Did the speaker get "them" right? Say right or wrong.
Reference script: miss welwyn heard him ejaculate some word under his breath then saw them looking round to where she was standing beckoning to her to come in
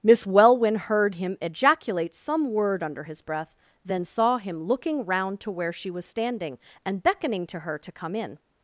wrong